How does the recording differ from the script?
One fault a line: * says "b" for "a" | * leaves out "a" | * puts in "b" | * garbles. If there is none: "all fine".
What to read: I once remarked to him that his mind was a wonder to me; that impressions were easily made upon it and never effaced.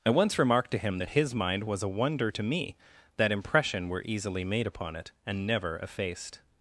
* says "impression" for "impressions"